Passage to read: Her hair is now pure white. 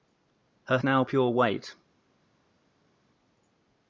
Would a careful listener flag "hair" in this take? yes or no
yes